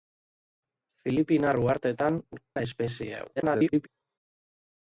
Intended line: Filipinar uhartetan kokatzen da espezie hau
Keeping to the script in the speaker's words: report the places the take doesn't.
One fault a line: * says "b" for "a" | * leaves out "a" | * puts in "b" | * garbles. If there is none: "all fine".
* leaves out "kokatzen"
* garbles